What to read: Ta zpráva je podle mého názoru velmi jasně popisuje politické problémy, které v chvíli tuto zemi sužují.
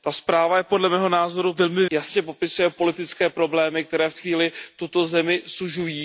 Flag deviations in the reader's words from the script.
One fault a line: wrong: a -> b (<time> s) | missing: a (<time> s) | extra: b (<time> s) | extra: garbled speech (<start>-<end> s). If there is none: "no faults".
no faults